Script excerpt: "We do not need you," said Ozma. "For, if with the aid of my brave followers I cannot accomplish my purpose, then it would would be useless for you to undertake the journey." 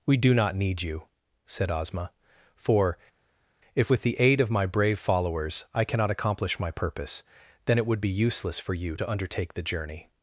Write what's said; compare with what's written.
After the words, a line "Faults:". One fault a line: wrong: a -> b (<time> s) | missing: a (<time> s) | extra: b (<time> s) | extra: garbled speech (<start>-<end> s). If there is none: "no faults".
"We do not need you," said Ozma. "For, if with the aid of my brave followers I cannot accomplish my purpose, then it would be useless for you to undertake the journey."
Faults:
missing: would (8.0 s)